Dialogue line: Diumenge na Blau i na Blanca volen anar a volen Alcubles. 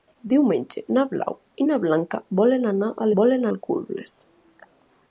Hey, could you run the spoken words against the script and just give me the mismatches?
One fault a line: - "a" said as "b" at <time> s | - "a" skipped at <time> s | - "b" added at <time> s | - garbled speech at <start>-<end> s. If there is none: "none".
none